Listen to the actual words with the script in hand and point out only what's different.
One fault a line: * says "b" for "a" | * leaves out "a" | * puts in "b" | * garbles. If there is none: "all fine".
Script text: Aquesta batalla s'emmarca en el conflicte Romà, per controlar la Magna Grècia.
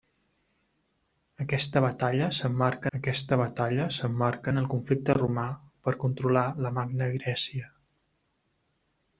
* puts in "aquesta batalla s'emmarca"